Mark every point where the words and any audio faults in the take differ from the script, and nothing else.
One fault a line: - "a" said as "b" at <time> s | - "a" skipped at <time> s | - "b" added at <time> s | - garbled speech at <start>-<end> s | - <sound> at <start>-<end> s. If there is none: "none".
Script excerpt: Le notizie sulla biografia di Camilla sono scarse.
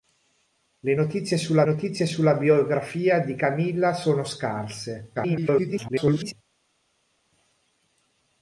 - "notizie sulla" added at 1.6 s
- garbled speech at 5.1-6.3 s